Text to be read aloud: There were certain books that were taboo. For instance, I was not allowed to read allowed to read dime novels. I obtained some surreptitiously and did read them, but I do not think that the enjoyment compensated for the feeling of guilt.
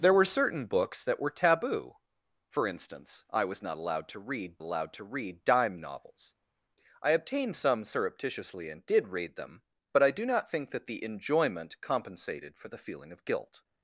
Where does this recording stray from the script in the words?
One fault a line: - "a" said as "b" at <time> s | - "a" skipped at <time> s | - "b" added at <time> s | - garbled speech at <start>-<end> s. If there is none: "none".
none